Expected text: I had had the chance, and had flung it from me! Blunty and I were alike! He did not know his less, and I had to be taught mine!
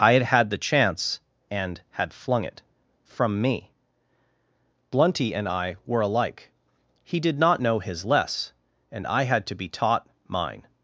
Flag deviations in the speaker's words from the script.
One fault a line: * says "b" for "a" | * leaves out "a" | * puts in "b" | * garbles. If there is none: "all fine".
all fine